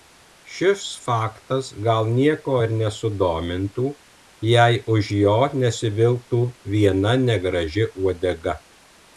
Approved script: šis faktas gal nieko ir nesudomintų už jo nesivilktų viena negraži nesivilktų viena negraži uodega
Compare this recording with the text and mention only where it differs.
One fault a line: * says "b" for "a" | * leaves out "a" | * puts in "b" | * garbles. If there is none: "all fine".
* puts in "jei"
* leaves out "nesivilktų viena negraži"